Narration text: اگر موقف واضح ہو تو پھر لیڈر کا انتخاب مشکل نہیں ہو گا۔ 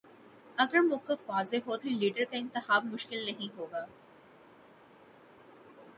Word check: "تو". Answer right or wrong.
wrong